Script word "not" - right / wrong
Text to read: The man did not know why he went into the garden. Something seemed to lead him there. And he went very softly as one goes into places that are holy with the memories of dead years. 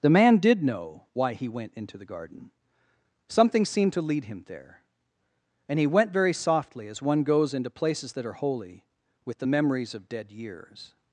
wrong